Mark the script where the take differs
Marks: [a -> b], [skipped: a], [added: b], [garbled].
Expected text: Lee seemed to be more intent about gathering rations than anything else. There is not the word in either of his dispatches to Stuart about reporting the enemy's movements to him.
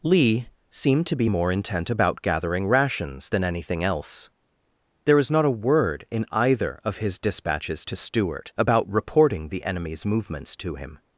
Lee seemed to be more intent about gathering rations than anything else. There is not [the -> a] word in either of his dispatches to Stuart about reporting the enemy's movements to him.